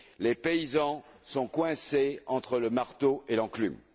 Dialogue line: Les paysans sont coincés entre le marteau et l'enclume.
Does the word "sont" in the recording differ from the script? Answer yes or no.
no